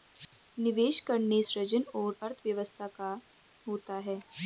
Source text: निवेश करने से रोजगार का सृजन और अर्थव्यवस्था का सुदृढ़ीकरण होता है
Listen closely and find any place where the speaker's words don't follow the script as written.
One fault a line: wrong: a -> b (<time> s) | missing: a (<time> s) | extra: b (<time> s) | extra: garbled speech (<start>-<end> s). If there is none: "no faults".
missing: से रोजगार का (1.4 s)
missing: सुदृढ़ीकरण (3.2 s)